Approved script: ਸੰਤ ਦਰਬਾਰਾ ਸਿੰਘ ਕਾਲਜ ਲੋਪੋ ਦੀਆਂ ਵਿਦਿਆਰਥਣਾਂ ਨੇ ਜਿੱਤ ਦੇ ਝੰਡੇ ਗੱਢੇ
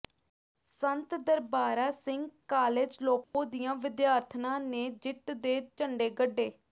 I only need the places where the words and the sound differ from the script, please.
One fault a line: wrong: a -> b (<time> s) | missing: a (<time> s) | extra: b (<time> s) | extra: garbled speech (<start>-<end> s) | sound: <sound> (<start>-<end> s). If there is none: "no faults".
sound: dropout (3.2-3.3 s)